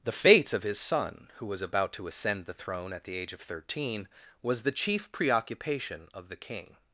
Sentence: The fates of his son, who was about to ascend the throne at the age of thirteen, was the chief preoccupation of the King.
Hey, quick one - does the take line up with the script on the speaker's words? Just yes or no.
yes